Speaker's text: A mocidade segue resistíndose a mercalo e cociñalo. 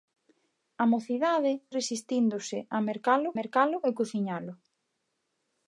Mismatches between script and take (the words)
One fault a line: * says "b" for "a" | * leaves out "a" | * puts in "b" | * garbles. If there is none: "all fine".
* leaves out "segue"
* puts in "mercalo"